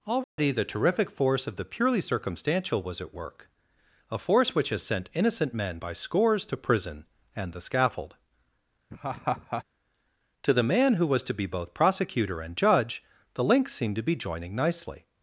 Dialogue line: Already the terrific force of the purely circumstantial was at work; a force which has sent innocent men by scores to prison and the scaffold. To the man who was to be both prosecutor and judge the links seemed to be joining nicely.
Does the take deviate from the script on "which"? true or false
false